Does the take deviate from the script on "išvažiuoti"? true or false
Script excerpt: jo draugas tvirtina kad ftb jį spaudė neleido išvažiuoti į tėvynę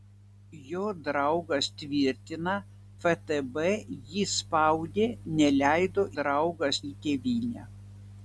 true